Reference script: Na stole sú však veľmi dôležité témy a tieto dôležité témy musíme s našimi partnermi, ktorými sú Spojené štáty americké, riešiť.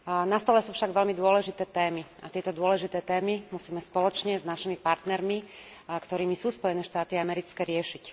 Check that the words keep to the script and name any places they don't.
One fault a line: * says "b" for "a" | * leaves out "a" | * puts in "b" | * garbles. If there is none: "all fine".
* puts in "spoločne"